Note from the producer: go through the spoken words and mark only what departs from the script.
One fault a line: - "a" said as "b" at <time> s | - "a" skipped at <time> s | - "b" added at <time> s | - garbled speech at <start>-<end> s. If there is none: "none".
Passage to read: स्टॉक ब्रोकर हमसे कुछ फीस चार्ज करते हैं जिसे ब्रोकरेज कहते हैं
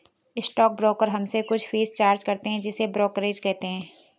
none